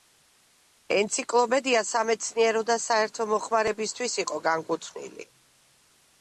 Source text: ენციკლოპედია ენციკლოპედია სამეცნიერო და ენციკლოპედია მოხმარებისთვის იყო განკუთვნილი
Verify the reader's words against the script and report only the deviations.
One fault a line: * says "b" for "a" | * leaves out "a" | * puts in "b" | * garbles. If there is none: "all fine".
* leaves out "ენციკლოპედია"
* says "საერთო" for "ენციკლოპედია"